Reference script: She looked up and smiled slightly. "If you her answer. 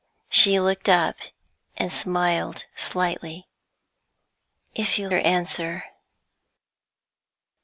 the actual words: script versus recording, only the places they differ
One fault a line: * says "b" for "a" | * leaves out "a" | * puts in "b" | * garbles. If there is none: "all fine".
all fine